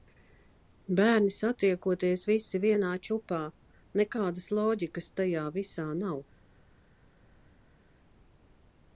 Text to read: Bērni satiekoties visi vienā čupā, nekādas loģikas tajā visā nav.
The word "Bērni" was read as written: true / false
true